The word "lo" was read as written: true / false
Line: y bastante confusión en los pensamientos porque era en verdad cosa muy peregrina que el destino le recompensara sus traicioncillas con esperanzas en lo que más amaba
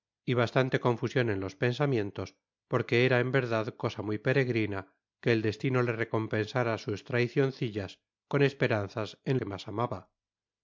false